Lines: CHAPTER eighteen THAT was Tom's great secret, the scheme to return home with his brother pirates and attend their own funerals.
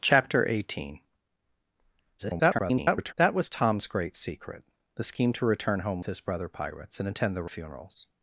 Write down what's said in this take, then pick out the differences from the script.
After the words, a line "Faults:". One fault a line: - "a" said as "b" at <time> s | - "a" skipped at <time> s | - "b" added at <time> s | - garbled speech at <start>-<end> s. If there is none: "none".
CHAPTER eighteen [garbled] THAT was Tom's great secret, the scheme to return home his brother pirates and attend their funerals.
Faults:
- garbled speech at 2.2-3.1 s
- "with" skipped at 6.0 s
- "own" skipped at 7.5 s